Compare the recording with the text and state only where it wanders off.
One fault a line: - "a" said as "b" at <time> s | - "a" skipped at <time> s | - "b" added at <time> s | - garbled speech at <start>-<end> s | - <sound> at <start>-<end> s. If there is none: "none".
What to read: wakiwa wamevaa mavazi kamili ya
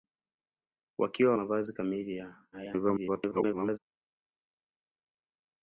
- "wamevaa" skipped at 1.3 s
- garbled speech at 2.5-3.8 s